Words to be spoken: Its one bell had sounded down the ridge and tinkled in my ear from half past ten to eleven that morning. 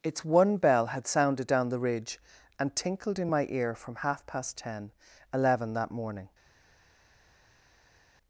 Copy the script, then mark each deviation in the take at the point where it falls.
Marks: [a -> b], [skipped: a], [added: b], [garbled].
Its one bell had sounded down the ridge and tinkled in my ear from half past ten [skipped: to] eleven that morning.